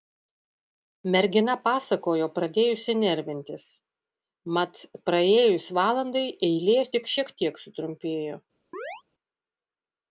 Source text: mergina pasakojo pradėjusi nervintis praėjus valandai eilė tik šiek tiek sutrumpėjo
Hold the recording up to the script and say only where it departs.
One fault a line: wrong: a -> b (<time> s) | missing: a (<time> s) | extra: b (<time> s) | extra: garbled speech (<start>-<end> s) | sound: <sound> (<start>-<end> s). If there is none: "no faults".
extra: mat (4.6 s)
sound: chirp (8.7-9.0 s)